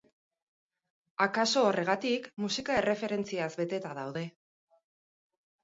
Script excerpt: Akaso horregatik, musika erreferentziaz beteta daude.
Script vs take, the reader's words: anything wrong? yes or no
no